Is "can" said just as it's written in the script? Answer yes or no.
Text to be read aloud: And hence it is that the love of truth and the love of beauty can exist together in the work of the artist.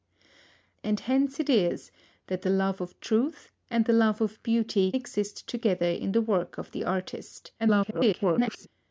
no